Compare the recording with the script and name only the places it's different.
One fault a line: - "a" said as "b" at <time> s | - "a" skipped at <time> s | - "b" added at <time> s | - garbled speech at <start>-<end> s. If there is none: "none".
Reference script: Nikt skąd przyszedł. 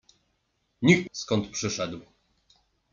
none